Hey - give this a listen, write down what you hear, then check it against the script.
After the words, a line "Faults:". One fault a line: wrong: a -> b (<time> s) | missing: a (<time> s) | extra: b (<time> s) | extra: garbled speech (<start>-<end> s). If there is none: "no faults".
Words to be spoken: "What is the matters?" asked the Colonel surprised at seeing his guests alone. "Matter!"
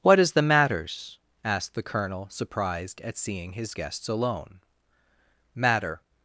"What is the matters?" asked the Colonel surprised at seeing his guests alone. "Matter!"
Faults:
no faults